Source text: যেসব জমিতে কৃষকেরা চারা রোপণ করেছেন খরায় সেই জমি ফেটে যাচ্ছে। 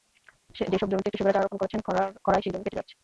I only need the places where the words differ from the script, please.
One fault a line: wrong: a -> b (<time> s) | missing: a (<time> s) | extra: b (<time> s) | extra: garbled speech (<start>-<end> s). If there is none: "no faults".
no faults